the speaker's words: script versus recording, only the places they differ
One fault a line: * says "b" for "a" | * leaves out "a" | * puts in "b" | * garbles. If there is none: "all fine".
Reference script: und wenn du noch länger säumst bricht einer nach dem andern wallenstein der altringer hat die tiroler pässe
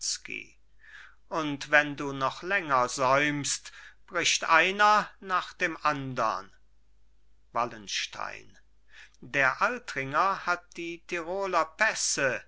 all fine